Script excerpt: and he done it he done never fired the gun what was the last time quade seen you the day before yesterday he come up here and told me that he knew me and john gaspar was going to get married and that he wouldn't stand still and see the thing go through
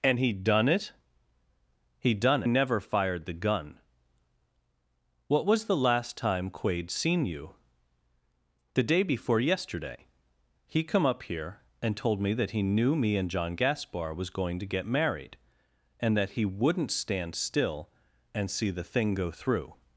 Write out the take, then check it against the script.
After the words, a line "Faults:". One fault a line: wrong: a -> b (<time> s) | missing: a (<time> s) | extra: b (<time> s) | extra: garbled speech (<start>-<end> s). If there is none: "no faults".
and he done it he done never fired the gun what was the last time quade seen you the day before yesterday he come up here and told me that he knew me and john gaspar was going to get married and that he wouldn't stand still and see the thing go through
Faults:
no faults